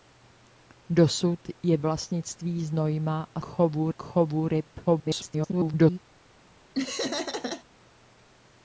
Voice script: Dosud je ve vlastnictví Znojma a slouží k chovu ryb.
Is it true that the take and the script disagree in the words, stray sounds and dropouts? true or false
true